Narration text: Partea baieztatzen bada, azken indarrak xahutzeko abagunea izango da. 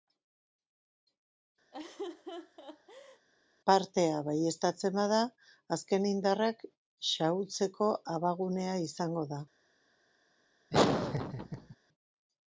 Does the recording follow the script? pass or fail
pass